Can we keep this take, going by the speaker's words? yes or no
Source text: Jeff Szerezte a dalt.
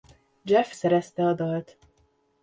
yes